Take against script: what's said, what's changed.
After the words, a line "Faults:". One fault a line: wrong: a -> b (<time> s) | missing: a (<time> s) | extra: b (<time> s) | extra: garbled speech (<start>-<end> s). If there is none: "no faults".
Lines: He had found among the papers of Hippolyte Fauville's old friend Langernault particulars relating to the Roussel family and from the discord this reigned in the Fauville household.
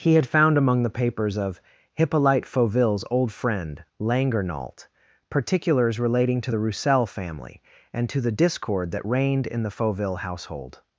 He had found among the papers of Hippolyte Fauville's old friend Langernault particulars relating to the Roussel family and to the discord that reigned in the Fauville household.
Faults:
wrong: from -> to (8.1 s)
wrong: this -> that (8.9 s)